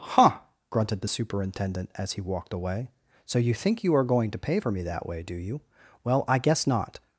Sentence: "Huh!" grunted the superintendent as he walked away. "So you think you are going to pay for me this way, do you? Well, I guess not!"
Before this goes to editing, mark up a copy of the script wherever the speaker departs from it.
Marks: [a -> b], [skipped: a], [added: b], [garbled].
"Huh!" grunted the superintendent as he walked away. "So you think you are going to pay for me [this -> that] way, do you? Well, I guess not!"